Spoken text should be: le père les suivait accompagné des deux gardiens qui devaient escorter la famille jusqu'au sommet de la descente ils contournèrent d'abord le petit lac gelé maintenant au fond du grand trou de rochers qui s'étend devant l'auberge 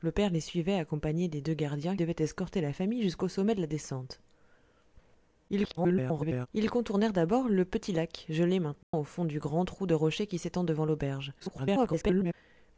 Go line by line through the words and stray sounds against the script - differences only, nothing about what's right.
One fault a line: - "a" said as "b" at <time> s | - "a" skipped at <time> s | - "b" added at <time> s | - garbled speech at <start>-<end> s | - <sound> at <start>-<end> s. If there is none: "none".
- "qui" skipped at 1.9 s
- garbled speech at 5.5-6.5 s
- dropout at 8.8-8.9 s
- garbled speech at 11.4-12.3 s